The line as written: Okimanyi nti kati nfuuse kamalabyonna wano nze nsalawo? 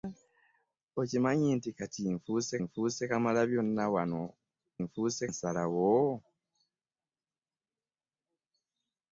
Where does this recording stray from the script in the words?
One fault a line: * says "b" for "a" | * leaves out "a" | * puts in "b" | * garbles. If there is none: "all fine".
* puts in "nfuuse"
* says "nfuuse" for "nze"